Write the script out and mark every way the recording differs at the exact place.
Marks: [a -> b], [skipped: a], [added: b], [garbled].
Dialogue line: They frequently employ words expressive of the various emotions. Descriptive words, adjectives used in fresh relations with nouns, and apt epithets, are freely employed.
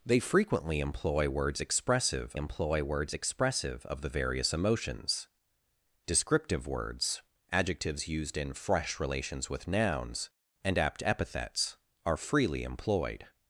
They frequently employ words expressive [added: employ words expressive] of the various emotions. Descriptive words, adjectives used in fresh relations with nouns, and apt epithets, are freely employed.